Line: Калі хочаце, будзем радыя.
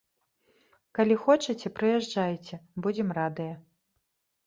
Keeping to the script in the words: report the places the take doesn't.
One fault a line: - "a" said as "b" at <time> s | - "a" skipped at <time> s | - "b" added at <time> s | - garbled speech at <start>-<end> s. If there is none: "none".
- "прыязджайце" added at 1.8 s